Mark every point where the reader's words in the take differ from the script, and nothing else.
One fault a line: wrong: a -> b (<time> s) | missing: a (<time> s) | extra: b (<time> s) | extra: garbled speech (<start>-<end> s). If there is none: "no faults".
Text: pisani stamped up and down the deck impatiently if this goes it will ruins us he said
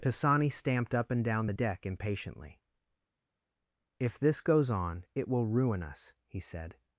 extra: on (4.7 s)
wrong: ruins -> ruin (5.5 s)